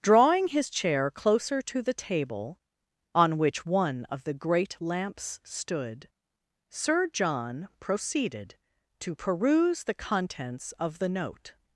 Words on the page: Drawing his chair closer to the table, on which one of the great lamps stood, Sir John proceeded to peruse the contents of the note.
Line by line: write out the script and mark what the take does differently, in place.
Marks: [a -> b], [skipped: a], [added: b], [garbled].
Drawing his chair closer to the table, on which one of the great lamps stood, Sir John proceeded to peruse the contents of the note.